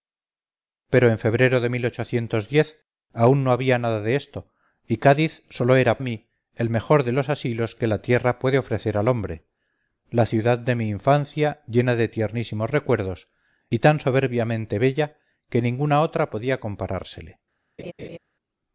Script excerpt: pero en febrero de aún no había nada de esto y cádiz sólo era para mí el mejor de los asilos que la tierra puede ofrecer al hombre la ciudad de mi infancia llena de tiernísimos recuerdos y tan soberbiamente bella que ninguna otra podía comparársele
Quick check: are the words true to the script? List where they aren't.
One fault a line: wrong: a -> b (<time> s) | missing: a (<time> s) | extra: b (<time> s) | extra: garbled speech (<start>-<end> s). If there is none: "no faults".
missing: para (6.0 s)